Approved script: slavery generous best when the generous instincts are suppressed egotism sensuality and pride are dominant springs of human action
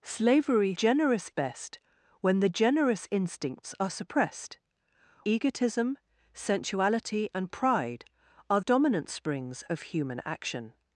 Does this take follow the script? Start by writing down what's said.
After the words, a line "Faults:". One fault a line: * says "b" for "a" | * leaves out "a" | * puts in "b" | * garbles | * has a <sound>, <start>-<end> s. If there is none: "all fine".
slavery generous best when the generous instincts are suppressed egotism sensuality and pride are dominant springs of human action
Faults:
all fine